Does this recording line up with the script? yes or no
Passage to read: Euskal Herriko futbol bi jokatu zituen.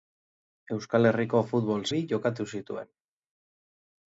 yes